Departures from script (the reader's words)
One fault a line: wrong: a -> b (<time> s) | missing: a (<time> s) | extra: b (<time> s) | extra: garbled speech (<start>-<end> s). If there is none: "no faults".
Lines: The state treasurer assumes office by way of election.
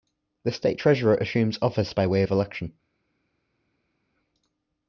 no faults